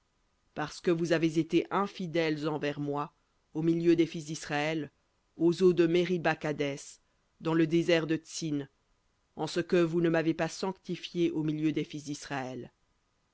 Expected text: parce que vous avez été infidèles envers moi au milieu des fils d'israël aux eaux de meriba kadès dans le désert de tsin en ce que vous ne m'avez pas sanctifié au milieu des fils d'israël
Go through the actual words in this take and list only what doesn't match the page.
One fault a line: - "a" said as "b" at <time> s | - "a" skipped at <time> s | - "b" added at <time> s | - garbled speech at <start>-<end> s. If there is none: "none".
none